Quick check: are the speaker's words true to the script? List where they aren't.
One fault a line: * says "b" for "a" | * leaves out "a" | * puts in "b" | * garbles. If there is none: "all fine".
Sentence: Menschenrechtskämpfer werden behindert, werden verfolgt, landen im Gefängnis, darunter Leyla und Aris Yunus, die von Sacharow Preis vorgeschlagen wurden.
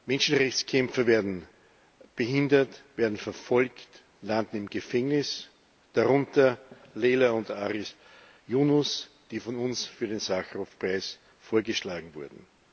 * puts in "uns für den"